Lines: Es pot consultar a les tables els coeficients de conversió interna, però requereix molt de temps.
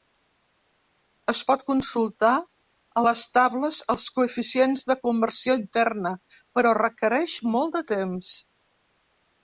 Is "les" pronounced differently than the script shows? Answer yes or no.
no